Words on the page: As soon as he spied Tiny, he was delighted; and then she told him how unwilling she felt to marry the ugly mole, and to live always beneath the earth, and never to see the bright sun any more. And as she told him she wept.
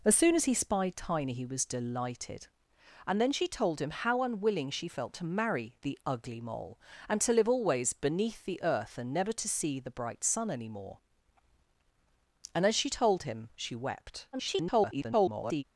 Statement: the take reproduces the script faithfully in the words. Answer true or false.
false